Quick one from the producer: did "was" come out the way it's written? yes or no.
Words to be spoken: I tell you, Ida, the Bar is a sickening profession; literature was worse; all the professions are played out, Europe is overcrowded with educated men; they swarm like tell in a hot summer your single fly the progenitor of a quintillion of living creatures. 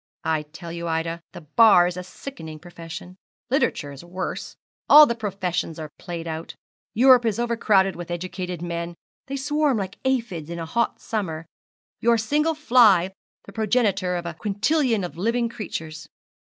no